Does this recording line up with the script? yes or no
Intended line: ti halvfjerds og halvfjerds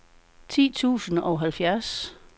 no